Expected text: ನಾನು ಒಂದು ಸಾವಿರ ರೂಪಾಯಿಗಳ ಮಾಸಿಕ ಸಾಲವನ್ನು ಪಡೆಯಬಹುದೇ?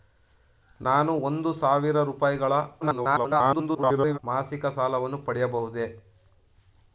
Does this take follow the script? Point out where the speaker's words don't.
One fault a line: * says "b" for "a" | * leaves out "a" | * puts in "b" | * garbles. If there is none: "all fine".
* garbles